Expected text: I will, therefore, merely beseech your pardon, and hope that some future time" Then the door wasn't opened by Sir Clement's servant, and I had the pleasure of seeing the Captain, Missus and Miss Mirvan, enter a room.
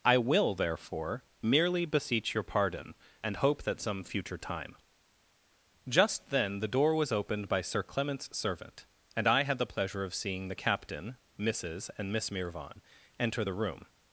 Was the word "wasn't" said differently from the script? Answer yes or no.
yes